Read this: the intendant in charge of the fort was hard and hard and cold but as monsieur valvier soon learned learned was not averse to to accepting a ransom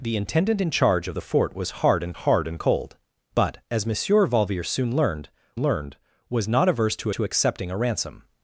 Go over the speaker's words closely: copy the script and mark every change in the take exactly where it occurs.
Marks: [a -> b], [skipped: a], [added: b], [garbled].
the intendant in charge of the fort was hard and hard and cold but as monsieur valvier soon learned learned was not averse to to accepting a ransom